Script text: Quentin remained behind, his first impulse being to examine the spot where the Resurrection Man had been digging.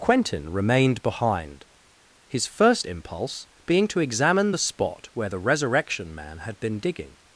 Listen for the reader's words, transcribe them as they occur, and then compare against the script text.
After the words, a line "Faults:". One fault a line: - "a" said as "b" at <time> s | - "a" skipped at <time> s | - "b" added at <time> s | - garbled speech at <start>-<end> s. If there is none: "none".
Quentin remained behind, his first impulse being to examine the spot where the Resurrection Man had been digging.
Faults:
none